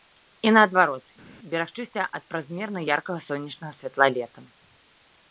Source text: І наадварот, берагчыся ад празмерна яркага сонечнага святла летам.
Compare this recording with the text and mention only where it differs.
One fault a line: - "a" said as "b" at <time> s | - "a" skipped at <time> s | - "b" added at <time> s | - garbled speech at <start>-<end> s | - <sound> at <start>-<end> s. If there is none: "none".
none